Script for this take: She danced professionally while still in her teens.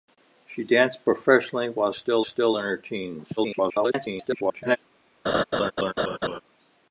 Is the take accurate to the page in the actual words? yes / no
no